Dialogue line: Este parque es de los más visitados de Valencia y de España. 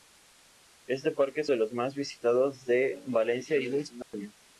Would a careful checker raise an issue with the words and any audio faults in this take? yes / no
yes